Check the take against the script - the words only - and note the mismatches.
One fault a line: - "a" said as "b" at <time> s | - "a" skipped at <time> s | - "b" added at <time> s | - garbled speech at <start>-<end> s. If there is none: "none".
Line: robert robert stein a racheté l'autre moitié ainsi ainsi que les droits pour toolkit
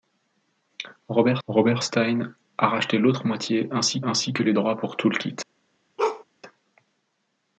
none